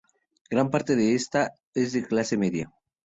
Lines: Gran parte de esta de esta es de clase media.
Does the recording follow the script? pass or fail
fail